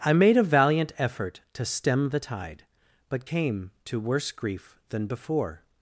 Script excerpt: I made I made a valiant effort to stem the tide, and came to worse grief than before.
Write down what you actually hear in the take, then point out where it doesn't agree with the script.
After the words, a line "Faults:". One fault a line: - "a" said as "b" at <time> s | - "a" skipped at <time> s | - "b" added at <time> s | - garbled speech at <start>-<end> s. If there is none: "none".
I made a valiant effort to stem the tide, but came to worse grief than before.
Faults:
- "I made" skipped at 0.3 s
- "and" said as "but" at 3.1 s